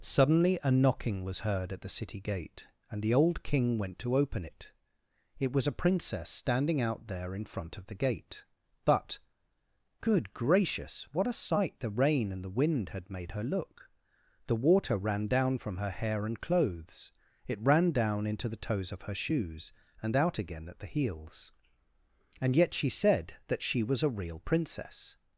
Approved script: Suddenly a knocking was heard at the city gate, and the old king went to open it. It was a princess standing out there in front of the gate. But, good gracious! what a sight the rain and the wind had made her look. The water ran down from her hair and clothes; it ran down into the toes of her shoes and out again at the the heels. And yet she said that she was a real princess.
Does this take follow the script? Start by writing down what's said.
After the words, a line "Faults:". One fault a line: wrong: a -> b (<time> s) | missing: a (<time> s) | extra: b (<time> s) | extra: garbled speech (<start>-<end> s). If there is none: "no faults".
Suddenly a knocking was heard at the city gate, and the old king went to open it. It was a princess standing out there in front of the gate. But, good gracious! what a sight the rain and the wind had made her look. The water ran down from her hair and clothes; it ran down into the toes of her shoes and out again at the heels. And yet she said that she was a real princess.
Faults:
missing: the (20.9 s)